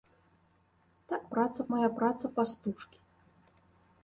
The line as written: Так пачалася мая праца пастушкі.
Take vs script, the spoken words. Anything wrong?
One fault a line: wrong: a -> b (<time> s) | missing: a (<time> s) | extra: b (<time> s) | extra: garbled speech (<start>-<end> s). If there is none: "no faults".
wrong: пачалася -> праца (1.3 s)